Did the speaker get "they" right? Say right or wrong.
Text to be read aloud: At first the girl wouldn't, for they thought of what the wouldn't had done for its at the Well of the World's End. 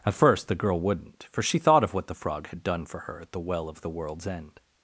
wrong